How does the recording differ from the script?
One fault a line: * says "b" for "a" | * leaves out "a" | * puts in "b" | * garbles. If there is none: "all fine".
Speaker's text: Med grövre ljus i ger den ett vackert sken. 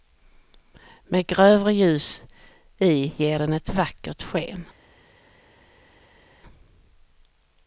all fine